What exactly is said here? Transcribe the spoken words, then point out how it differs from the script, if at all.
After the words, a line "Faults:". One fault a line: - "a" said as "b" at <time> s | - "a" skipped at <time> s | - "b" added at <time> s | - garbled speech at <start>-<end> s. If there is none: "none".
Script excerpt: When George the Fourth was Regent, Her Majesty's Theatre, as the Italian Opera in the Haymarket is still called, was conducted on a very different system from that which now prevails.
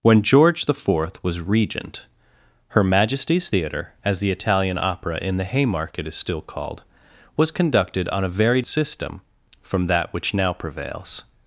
When George the Fourth was Regent, Her Majesty's Theatre, as the Italian Opera in the Haymarket is still called, was conducted on a very system from that which now prevails.
Faults:
- "different" skipped at 8.6 s